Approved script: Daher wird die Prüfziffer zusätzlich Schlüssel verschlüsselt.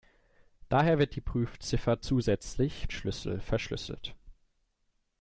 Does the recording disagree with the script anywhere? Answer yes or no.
no